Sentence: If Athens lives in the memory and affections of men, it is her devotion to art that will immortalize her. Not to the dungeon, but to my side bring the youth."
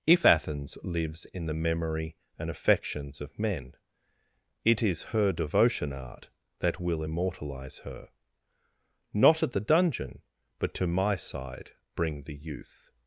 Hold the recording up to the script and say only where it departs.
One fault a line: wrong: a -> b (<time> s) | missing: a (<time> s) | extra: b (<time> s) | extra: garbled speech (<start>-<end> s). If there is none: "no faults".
missing: to (5.9 s)
wrong: to -> at (9.4 s)